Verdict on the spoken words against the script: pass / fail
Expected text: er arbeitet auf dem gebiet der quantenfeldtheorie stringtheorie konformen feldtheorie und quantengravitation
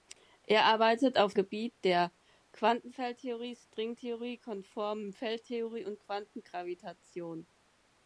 fail